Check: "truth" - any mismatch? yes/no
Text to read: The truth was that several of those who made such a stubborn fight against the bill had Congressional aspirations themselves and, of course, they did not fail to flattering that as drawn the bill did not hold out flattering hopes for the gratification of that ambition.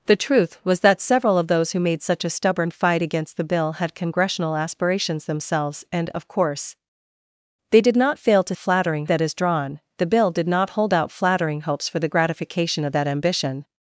no